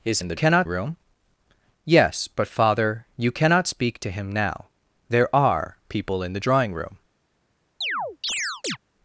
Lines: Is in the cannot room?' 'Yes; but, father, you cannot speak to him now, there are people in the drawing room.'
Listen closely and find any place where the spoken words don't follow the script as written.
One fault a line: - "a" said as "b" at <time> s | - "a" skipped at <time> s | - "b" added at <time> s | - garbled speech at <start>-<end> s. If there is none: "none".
none